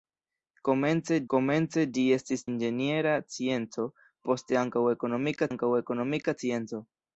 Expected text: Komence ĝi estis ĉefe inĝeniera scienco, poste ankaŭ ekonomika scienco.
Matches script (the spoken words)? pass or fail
fail